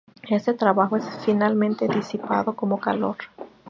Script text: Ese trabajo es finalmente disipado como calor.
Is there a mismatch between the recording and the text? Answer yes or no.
yes